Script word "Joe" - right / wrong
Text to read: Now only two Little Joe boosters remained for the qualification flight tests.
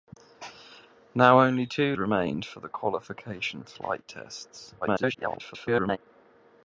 wrong